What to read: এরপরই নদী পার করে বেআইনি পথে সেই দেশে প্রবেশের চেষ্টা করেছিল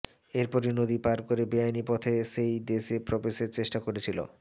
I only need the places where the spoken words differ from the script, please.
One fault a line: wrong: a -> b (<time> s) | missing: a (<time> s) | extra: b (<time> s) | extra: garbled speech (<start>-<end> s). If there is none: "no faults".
no faults